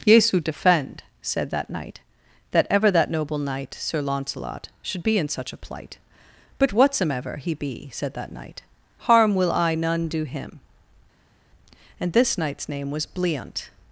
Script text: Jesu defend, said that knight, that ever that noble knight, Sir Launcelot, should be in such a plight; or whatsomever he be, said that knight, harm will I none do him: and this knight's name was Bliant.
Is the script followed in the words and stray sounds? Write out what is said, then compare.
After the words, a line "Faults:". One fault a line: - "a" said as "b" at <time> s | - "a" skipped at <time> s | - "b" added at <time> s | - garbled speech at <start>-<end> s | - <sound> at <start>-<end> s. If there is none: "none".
Jesu defend, said that knight, that ever that noble knight, Sir Launcelot, should be in such a plight; but whatsomever he be, said that knight, harm will I none do him: and this knight's name was Bliant.
Faults:
- "or" said as "but" at 6.6 s